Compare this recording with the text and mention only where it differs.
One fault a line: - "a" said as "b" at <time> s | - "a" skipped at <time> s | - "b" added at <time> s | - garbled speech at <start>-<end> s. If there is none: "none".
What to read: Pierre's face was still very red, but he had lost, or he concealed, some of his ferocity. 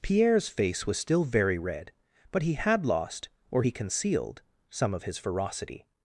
none